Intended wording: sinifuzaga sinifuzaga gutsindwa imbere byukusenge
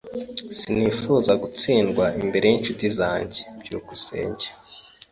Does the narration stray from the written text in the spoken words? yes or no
yes